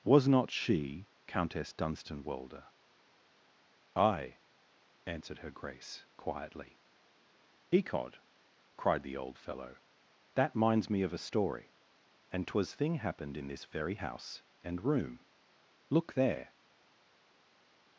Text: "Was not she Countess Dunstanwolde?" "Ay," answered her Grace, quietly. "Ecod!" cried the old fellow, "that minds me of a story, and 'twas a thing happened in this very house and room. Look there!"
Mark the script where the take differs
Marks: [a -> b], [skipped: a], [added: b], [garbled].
"Was not she Countess Dunstanwolde?" "Ay," answered her Grace, quietly. "Ecod!" cried the old fellow, "that minds me of a story, and 'twas [skipped: a] thing happened in this very house and room. Look there!"